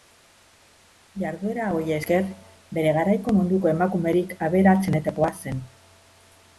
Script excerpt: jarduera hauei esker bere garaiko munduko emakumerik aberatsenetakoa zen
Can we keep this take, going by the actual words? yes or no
yes